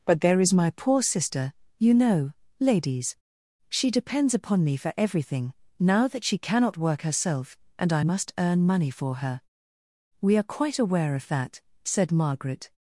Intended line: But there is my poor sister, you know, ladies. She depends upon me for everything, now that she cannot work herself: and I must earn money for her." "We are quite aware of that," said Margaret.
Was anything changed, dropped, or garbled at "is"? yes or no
no